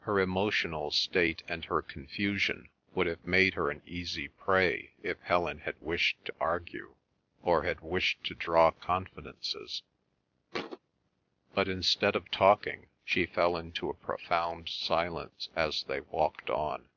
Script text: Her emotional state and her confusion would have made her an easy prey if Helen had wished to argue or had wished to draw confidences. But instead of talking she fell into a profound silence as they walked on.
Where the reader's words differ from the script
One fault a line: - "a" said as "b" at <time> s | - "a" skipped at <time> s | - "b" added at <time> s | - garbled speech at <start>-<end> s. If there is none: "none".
none